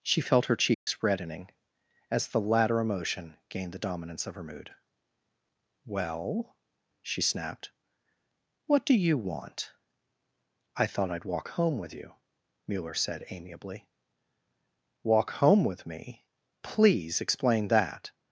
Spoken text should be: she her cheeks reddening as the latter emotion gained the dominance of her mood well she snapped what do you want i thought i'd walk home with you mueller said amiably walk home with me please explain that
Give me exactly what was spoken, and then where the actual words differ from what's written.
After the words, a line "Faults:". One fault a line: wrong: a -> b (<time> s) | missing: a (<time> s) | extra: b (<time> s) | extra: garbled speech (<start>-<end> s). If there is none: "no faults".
she felt her cheeks reddening as the latter emotion gained the dominance of her mood well she snapped what do you want i thought i'd walk home with you mueller said amiably walk home with me please explain that
Faults:
extra: felt (0.2 s)